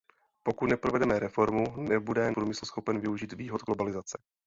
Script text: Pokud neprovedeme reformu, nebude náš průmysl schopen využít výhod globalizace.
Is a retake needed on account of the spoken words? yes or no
yes